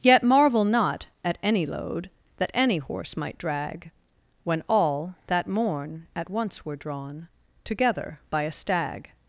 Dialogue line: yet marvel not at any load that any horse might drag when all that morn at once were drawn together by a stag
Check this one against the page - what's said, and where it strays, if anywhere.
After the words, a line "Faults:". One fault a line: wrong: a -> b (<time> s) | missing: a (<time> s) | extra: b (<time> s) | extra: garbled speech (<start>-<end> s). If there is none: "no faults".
yet marvel not at any load that any horse might drag when all that morn at once were drawn together by a stag
Faults:
no faults